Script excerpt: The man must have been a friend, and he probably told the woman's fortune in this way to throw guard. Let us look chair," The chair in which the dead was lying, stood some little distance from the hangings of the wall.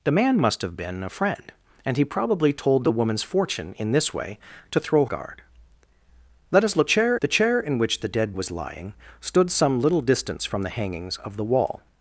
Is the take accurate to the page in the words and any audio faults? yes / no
yes